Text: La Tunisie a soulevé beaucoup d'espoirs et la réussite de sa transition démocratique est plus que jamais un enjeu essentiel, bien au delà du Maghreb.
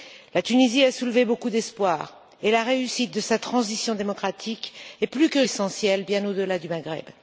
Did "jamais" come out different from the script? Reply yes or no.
yes